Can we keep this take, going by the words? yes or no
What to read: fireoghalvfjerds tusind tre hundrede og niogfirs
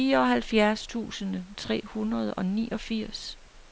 yes